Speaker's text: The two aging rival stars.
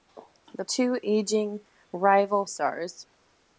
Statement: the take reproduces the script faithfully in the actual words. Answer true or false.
true